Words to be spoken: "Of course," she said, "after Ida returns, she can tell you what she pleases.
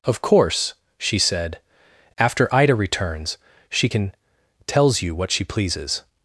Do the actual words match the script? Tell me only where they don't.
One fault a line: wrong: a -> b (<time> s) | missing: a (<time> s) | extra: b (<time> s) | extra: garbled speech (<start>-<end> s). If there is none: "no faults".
wrong: tell -> tells (4.7 s)